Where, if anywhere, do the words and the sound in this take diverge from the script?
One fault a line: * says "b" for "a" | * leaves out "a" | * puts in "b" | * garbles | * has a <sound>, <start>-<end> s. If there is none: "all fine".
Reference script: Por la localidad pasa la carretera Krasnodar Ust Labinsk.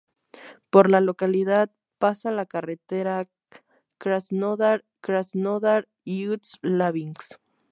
* puts in "Krasnodar"